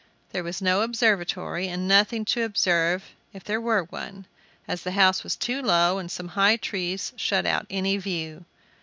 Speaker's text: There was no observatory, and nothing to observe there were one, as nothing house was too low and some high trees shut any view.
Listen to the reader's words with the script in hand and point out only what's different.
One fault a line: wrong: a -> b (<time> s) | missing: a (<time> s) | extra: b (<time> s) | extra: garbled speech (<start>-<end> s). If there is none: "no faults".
extra: if (3.3 s)
wrong: nothing -> the (4.8 s)
extra: out (7.5 s)